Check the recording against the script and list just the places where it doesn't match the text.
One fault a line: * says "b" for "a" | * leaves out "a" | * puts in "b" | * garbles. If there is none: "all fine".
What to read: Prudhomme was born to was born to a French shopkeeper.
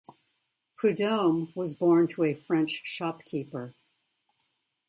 * leaves out "was born to"